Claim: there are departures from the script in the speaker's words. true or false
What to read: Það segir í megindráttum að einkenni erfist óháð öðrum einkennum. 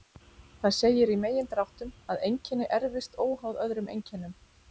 false